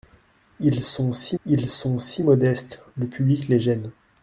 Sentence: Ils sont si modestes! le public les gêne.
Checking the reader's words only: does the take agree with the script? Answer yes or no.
no